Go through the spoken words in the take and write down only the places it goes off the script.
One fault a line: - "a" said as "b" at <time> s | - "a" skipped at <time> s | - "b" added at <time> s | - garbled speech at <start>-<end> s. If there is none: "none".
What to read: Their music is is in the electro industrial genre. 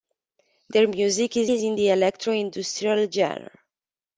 none